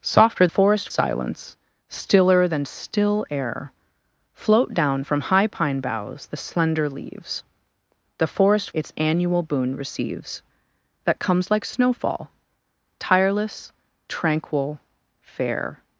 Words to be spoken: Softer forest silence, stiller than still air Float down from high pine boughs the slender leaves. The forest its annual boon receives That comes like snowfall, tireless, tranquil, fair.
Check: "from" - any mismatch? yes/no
no